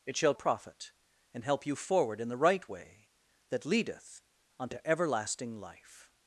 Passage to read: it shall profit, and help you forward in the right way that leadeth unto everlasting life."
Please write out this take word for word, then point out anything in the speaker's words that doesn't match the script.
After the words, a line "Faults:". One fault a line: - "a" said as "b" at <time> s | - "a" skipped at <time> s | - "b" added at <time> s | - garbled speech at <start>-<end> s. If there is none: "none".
it shall profit, and help you forward in the right way that leadeth unto everlasting life."
Faults:
none